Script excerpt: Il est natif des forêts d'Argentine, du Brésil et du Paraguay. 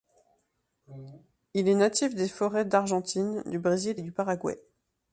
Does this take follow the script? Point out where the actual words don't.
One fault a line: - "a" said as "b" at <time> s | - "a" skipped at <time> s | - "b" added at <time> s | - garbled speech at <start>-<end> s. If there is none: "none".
none